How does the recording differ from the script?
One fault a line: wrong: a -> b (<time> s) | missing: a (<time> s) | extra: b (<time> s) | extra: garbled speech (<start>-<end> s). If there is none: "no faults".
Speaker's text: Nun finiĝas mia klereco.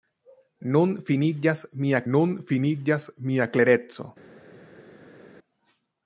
extra: nun finiĝas mia (2.1 s)